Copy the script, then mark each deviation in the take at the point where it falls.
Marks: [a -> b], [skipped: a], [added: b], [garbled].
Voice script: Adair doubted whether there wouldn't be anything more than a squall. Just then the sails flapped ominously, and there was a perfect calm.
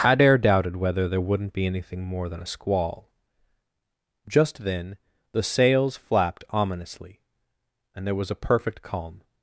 Adair doubted whether there wouldn't be anything more than a squall. Just then the sails flapped ominously, and there was a perfect calm.